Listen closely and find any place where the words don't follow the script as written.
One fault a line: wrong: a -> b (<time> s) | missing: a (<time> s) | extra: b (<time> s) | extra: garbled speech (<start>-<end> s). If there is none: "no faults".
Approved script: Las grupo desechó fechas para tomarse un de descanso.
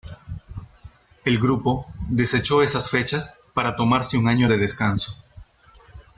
wrong: Las -> El (1.2 s)
extra: esas (2.6 s)
extra: año (4.3 s)